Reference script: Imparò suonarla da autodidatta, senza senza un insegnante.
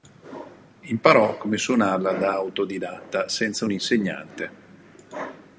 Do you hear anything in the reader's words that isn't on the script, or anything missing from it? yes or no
yes